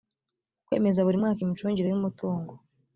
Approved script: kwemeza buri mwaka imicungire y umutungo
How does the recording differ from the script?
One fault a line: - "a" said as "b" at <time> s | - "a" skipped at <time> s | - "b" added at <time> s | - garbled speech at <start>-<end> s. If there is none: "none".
none